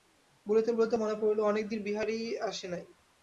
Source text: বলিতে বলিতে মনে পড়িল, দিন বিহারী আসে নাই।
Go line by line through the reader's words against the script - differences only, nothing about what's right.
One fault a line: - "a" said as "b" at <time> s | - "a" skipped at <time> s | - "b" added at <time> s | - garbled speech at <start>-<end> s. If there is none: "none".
- "অনেক" added at 1.4 s